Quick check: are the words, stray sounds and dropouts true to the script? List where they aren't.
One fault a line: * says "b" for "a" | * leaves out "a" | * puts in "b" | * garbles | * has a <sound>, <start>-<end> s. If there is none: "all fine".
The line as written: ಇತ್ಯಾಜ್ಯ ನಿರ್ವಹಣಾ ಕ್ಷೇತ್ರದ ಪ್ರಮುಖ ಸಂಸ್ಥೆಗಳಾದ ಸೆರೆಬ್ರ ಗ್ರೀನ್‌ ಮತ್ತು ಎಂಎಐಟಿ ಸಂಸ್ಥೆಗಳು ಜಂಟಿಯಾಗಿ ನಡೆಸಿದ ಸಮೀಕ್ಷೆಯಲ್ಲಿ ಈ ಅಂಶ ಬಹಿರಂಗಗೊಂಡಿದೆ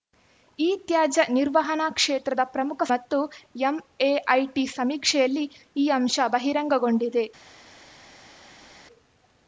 * leaves out "ಸಂಸ್ಥೆಗಳಾದ ಸೆರೆಬ್ರ ಗ್ರೀನ್"
* leaves out "ಸಂಸ್ಥೆಗಳು ಜಂಟಿಯಾಗಿ ನಡೆಸಿದ"